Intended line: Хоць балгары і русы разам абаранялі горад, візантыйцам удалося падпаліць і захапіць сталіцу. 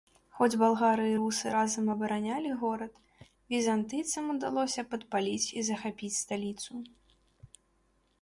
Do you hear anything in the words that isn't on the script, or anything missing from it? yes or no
no